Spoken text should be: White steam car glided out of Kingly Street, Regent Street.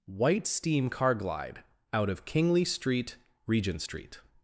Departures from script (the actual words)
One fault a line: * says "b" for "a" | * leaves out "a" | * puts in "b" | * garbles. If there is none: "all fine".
* says "glide" for "glided"